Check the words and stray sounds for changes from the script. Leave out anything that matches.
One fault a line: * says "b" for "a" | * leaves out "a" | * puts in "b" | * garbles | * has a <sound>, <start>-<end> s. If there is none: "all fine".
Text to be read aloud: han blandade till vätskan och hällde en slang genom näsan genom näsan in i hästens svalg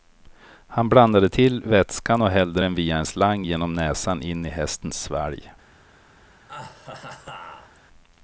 * puts in "den via"
* leaves out "genom näsan"
* has a laugh, 6.5-7.8 s